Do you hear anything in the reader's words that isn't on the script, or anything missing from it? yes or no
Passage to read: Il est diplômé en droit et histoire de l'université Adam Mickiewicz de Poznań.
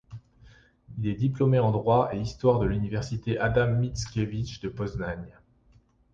no